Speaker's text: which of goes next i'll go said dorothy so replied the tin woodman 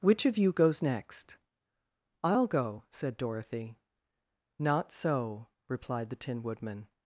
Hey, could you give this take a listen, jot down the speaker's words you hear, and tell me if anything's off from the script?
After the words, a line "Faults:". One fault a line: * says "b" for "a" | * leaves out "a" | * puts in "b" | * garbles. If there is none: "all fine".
which of you goes next i'll go said dorothy not so replied the tin woodman
Faults:
* puts in "you"
* puts in "not"